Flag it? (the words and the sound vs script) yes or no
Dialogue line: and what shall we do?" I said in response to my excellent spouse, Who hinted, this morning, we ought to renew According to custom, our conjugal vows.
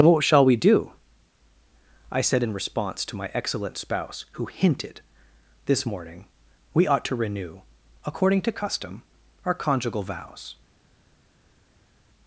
yes